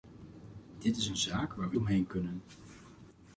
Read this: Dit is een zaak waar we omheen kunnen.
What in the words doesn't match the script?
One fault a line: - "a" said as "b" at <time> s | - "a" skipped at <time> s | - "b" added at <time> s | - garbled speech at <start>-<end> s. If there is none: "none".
none